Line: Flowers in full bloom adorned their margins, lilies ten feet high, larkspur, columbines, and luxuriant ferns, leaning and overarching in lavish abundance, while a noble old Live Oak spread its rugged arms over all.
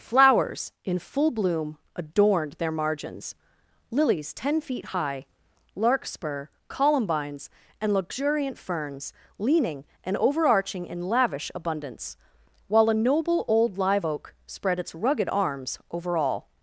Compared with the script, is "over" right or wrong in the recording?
right